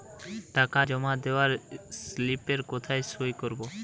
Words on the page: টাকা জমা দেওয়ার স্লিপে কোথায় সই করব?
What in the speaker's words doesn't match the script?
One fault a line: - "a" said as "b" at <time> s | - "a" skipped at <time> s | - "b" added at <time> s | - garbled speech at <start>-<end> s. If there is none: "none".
none